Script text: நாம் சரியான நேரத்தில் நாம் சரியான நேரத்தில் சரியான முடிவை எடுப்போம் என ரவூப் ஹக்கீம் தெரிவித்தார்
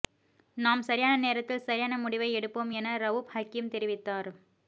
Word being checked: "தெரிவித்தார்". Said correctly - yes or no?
yes